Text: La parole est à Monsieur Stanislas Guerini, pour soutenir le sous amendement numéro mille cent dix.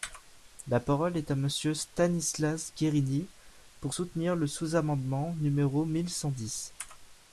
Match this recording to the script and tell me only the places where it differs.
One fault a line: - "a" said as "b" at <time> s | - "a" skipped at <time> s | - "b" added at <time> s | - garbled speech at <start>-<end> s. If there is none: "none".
none